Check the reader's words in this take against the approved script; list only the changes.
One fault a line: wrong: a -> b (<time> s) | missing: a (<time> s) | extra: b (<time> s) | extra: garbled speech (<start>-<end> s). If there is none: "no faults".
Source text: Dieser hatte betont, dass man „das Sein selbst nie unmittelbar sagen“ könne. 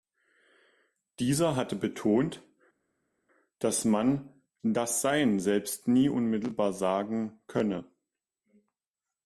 no faults